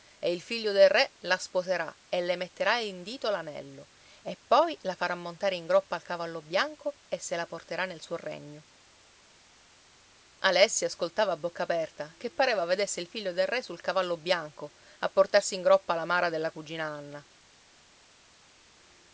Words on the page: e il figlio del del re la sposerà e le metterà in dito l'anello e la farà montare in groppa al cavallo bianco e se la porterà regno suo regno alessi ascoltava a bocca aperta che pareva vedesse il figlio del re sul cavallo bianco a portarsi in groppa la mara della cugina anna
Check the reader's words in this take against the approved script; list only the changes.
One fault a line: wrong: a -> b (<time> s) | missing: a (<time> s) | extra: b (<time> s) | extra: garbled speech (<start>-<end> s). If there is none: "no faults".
missing: del (0.9 s)
extra: poi (4.5 s)
wrong: regno -> nel (7.8 s)